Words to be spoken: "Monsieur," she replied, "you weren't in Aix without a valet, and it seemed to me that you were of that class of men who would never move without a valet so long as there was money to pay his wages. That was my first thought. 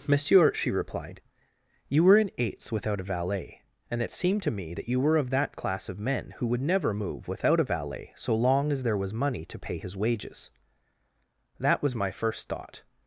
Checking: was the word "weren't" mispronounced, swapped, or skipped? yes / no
yes